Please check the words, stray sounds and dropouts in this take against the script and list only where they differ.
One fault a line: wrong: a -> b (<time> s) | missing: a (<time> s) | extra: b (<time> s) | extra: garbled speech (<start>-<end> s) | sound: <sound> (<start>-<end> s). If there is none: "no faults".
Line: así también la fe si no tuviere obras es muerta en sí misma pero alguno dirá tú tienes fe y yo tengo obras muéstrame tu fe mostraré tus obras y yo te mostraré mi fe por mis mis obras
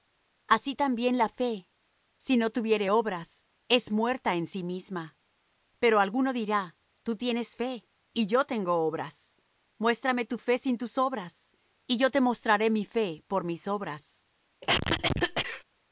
wrong: mostraré -> sin (10.6 s)
missing: mis (13.7 s)
sound: cough (14.6-15.6 s)